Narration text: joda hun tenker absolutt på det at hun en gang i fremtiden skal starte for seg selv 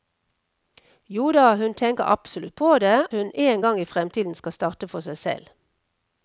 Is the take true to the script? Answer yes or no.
no